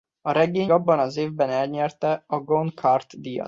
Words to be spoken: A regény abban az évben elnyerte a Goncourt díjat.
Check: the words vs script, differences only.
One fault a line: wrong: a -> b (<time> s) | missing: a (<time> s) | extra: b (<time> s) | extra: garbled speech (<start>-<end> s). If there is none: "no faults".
no faults